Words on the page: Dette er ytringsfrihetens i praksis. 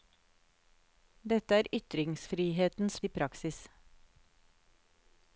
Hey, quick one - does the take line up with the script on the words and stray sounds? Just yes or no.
yes